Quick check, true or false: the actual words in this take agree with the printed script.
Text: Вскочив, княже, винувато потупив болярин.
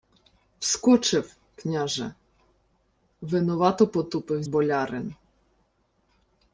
true